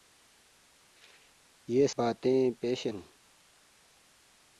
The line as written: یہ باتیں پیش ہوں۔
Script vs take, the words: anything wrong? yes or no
no